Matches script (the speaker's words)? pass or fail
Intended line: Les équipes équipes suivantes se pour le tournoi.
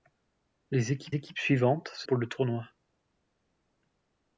pass